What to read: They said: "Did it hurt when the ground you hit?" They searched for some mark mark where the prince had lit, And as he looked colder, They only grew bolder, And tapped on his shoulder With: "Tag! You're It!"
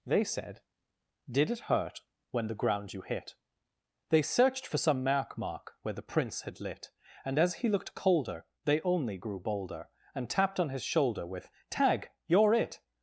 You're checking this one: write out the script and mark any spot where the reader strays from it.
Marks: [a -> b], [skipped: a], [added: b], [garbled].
They said: "Did it hurt when the ground you hit?" They searched for some mark mark where the prince had lit, And as he looked colder, They only grew bolder, And tapped on his shoulder With: "Tag! You're It!"